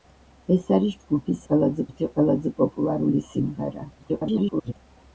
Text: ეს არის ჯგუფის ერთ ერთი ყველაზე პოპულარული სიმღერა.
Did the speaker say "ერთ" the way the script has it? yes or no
no